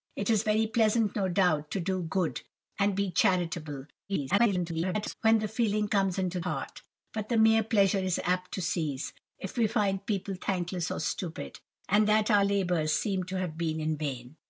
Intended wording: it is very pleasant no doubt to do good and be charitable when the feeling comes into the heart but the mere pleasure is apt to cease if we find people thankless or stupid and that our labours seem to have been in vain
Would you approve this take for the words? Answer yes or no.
no